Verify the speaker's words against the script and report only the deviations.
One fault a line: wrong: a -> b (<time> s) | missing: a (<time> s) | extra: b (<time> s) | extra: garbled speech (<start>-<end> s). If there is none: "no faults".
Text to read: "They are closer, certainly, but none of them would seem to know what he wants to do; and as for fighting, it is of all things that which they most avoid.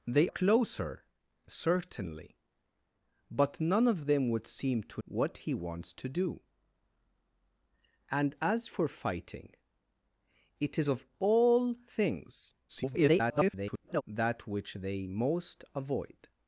missing: are (0.3 s)
missing: know (5.0 s)
extra: garbled speech (12.7-14.0 s)